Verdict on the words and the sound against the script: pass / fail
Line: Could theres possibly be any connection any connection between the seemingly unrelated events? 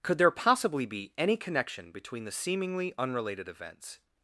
fail